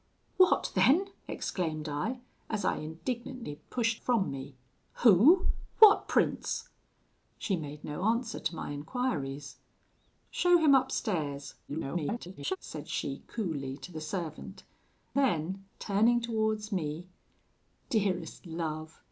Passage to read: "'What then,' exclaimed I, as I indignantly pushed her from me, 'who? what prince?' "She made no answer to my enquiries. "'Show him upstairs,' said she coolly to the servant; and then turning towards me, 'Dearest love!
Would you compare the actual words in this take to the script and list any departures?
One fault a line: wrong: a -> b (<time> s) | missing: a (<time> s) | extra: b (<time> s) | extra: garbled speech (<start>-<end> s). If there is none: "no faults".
missing: her (4.0 s)
extra: garbled speech (11.7-12.6 s)
missing: and (14.6 s)